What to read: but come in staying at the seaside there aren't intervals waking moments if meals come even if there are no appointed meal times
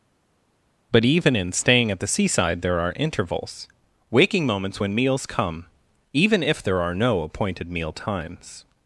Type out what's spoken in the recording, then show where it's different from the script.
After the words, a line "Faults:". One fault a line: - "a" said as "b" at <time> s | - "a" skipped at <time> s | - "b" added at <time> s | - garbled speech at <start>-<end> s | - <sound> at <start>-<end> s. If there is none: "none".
but even in staying at the seaside there are intervals waking moments when meals come even if there are no appointed meal times
Faults:
- "come" said as "even" at 1.0 s
- "aren't" said as "are" at 2.8 s
- "if" said as "when" at 4.8 s